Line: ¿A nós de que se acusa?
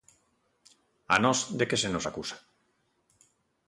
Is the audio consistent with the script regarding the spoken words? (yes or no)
no